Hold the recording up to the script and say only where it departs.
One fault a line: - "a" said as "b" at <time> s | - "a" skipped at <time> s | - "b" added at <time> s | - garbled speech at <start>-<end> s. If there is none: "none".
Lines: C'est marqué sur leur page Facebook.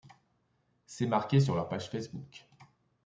none